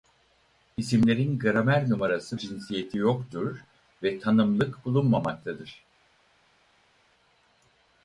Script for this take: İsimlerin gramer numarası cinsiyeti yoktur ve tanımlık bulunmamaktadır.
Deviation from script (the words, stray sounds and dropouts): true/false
false